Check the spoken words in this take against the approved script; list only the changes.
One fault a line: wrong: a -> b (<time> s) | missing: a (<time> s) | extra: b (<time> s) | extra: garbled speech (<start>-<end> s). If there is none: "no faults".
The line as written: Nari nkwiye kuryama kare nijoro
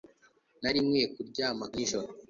missing: kare (1.6 s)